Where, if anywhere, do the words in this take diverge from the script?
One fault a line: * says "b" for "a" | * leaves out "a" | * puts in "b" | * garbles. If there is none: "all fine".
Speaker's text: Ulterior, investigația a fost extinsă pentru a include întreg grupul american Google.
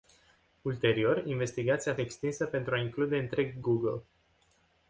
* leaves out "fost"
* leaves out "grupul american"